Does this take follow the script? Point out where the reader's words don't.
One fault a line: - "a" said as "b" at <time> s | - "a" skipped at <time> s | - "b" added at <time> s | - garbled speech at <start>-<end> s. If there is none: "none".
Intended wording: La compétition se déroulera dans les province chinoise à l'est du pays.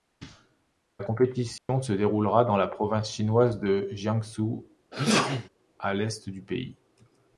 - "les" said as "la" at 2.5 s
- "de Jiangsu" added at 3.6 s